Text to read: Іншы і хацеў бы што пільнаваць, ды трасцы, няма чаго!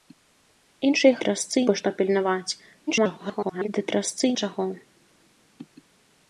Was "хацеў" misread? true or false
true